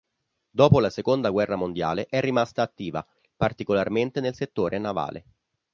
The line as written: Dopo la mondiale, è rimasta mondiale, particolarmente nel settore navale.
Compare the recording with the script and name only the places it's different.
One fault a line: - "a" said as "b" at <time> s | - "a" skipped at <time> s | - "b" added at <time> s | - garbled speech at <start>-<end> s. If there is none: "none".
- "seconda guerra" added at 0.9 s
- "mondiale" said as "attiva" at 2.6 s